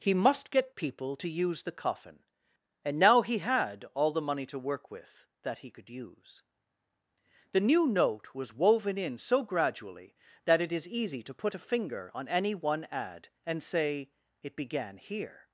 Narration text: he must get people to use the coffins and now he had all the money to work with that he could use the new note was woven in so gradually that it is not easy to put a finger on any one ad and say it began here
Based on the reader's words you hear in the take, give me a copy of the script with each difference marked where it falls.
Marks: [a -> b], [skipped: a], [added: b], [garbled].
he must get people to use the [coffins -> coffin] and now he had all the money to work with that he could use the new note was woven in so gradually that it is [skipped: not] easy to put a finger on any one ad and say it began here